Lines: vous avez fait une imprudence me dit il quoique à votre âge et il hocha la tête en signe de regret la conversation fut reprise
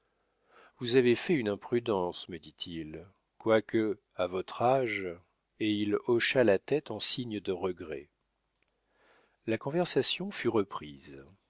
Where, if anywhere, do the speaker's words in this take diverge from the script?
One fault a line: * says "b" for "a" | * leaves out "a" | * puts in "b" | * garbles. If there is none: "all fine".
all fine